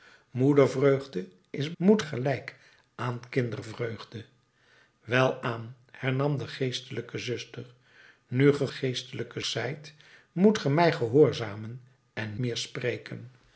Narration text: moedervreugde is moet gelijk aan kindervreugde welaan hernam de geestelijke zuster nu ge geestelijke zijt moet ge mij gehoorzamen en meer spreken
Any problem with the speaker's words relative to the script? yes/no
no